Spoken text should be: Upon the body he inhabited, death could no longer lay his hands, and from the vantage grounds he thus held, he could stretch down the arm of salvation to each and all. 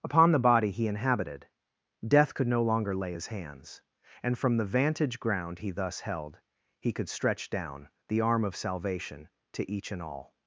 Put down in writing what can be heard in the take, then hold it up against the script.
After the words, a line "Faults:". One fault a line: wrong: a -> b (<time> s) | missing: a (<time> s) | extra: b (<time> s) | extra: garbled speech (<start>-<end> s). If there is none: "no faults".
Upon the body he inhabited, death could no longer lay his hands, and from the vantage ground he thus held, he could stretch down the arm of salvation to each and all.
Faults:
wrong: grounds -> ground (5.2 s)